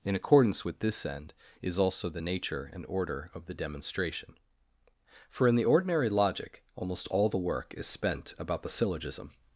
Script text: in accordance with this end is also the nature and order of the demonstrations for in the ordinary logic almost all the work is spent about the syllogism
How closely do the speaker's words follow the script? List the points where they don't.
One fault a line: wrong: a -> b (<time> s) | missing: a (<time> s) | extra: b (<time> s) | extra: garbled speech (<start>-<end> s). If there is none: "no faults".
wrong: demonstrations -> demonstration (3.5 s)